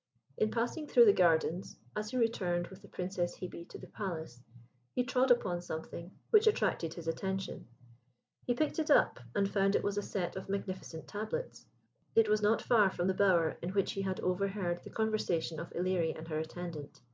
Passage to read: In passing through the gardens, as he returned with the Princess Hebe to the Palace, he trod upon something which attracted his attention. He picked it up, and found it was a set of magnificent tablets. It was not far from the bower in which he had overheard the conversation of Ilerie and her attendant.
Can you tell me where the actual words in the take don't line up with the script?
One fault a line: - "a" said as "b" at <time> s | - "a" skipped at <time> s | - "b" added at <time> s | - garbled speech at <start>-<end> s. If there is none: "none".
none